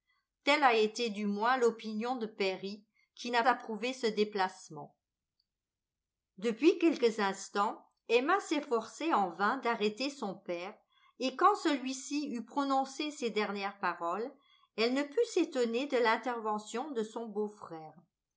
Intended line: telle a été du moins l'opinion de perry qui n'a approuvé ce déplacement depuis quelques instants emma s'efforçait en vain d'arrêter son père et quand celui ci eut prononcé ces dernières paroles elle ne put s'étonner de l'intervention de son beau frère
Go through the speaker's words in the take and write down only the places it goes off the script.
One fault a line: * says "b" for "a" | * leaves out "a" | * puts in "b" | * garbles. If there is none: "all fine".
all fine